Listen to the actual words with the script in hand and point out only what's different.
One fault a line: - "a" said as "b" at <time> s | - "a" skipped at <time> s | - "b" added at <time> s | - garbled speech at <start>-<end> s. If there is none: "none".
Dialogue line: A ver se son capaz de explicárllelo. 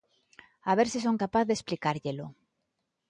none